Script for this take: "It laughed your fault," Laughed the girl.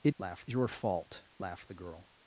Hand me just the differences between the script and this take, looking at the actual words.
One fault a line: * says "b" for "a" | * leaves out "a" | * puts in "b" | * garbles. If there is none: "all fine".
all fine